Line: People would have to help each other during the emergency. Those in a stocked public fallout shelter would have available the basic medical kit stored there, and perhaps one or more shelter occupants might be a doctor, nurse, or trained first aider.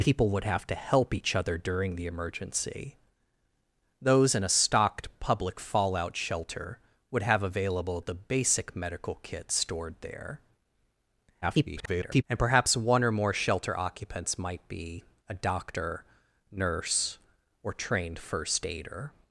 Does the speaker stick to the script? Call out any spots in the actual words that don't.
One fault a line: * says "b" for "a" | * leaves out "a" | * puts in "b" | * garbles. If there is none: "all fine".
* garbles